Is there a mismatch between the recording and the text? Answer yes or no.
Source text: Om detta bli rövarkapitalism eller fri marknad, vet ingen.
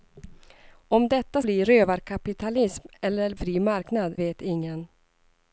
no